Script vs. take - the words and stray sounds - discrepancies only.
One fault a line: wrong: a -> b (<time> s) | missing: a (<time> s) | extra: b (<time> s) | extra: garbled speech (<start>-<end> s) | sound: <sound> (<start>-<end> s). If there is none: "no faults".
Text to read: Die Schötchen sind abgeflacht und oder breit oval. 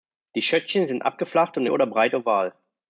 no faults